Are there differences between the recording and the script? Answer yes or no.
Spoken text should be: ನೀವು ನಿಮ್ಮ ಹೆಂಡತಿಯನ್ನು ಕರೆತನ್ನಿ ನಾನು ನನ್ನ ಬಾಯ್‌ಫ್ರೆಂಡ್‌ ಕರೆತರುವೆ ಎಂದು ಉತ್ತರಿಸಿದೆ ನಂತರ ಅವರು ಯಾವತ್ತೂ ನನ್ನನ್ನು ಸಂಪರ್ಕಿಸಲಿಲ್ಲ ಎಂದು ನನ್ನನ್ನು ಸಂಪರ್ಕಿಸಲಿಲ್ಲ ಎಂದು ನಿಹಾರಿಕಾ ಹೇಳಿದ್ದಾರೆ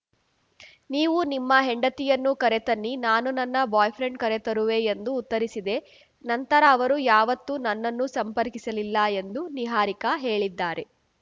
yes